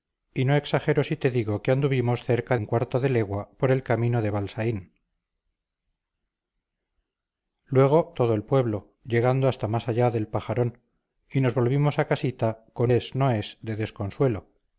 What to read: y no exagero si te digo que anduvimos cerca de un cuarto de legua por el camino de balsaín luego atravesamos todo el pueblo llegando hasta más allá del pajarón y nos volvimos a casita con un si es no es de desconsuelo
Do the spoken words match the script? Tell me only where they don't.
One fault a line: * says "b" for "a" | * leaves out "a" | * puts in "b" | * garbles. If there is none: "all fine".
* leaves out "de"
* leaves out "atravesamos"
* leaves out "un si"